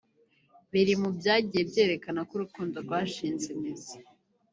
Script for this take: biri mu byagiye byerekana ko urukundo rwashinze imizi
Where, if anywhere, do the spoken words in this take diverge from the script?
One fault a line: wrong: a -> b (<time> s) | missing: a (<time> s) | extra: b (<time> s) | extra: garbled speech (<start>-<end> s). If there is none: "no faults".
no faults